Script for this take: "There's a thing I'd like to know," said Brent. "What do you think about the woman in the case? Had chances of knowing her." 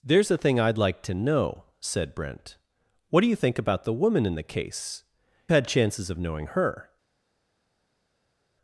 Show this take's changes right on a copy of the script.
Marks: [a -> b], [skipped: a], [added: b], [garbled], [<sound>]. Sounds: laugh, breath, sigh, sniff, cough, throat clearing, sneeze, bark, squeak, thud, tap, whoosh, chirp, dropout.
"There's a thing I'd like to know," said Brent. "What do you think about the woman in the case? Had chances of knowing her."